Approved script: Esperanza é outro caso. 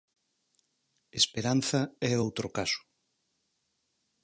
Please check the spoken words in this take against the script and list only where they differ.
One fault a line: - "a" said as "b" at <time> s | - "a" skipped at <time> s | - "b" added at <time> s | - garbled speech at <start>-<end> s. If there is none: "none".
none